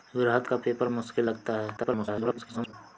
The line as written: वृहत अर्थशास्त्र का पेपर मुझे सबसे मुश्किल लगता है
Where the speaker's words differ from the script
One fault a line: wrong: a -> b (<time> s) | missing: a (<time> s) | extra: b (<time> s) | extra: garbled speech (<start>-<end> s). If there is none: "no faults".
missing: अर्थशास्त्र (0.5 s)
missing: मुझे सबसे (0.9 s)
extra: garbled speech (1.8-2.7 s)